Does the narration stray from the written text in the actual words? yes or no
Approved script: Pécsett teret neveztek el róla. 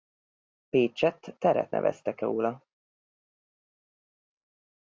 yes